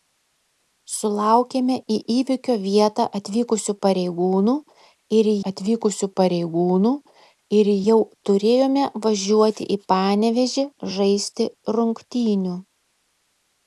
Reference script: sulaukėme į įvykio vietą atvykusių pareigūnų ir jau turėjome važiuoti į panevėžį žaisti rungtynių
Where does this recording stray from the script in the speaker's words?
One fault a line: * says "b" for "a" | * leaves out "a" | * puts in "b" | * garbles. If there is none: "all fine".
* puts in "atvykusių pareigūnų ir"